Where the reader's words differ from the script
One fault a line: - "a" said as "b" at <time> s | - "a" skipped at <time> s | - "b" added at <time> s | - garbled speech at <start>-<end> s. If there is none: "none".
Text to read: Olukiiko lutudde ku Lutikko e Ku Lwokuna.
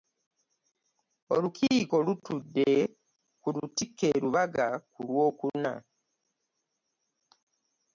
- "Lubaga" added at 4.2 s